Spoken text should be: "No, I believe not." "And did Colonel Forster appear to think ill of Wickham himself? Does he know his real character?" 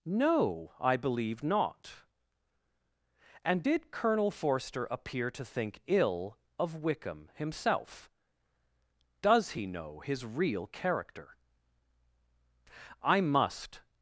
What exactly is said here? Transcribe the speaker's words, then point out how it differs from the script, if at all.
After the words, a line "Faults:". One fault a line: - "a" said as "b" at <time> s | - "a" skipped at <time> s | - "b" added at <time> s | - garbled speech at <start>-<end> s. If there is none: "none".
"No, I believe not." "And did Colonel Forster appear to think ill of Wickham himself? Does he know his real character?" "I must
Faults:
- "I must" added at 13.0 s